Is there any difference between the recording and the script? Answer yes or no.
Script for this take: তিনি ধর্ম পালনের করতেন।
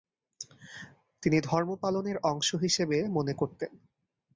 yes